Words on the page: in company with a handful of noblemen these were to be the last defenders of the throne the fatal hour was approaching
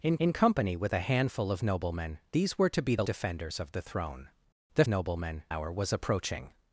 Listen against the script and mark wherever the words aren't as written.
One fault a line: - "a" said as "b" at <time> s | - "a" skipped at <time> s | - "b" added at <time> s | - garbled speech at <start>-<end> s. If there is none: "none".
- "in" added at 0.2 s
- "last" skipped at 3.0 s
- "fatal" said as "noblemen" at 4.9 s